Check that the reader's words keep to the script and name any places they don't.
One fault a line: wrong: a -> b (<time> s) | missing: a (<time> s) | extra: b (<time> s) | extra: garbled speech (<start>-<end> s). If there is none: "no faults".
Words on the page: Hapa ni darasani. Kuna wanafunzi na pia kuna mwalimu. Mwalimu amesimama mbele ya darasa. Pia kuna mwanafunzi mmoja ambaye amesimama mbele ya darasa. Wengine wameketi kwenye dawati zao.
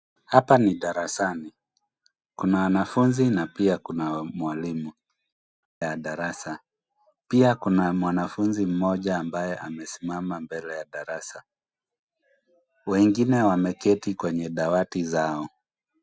missing: Mwalimu amesimama mbele (4.9 s)